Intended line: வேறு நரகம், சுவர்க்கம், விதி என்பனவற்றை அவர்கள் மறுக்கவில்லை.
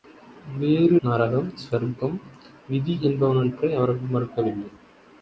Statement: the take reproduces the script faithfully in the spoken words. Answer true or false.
true